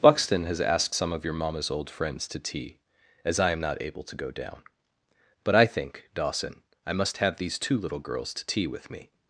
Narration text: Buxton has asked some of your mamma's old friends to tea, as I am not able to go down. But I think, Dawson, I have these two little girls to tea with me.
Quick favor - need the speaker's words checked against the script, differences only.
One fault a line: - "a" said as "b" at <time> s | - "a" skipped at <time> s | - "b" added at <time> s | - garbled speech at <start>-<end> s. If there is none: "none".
- "must" added at 6.9 s